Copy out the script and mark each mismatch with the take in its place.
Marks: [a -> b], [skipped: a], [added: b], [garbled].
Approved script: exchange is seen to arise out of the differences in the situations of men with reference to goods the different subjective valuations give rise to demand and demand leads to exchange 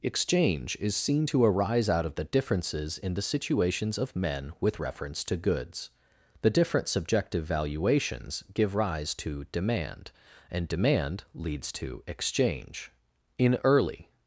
exchange is seen to arise out of the differences in the situations of men with reference to goods the different subjective valuations give rise to demand and demand leads to exchange [added: in early]